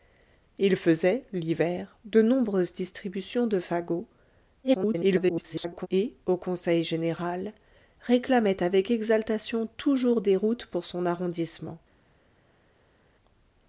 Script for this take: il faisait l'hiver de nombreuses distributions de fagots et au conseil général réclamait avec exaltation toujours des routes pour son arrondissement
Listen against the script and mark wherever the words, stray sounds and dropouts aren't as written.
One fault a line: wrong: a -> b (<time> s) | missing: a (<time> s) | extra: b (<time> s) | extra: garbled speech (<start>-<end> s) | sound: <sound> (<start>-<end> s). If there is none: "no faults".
extra: garbled speech (4.6-5.9 s)